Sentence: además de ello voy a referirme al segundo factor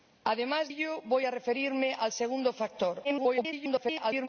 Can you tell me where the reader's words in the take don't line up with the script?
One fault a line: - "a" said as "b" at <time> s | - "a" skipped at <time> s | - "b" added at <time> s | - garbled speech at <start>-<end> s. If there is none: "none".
- "de" skipped at 0.7 s
- garbled speech at 3.0-4.3 s